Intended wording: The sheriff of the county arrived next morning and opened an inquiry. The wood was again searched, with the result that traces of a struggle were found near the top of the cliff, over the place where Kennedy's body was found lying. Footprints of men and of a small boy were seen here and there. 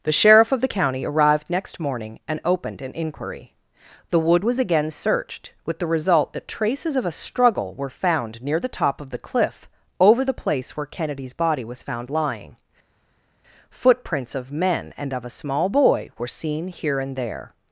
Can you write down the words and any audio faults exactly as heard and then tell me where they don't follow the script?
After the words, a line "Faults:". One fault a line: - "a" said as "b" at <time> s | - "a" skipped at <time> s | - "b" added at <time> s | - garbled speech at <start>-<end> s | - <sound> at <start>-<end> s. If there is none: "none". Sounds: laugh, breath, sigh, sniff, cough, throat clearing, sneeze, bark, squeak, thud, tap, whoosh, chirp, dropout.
The sheriff of the county arrived next morning and opened an inquiry. The wood was again searched, with the result that traces of a struggle were found near the top of the cliff, over the place where Kennedy's body was found lying. Footprints of men and of a small boy were seen here and there.
Faults:
none